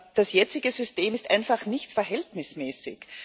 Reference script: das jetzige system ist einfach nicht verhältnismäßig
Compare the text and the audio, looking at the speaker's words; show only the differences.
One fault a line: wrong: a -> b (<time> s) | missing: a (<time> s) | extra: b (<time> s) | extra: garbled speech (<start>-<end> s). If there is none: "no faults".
no faults